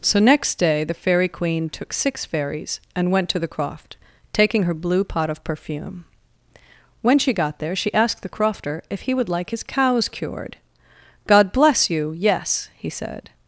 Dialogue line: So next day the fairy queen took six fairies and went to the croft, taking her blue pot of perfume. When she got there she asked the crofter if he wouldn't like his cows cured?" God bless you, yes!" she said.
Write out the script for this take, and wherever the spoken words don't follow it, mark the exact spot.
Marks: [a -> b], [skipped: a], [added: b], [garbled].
So next day the fairy queen took six fairies and went to the croft, taking her blue pot of perfume. When she got there she asked the crofter if he [wouldn't -> would] like his cows cured?" God bless you, yes!" [she -> he] said.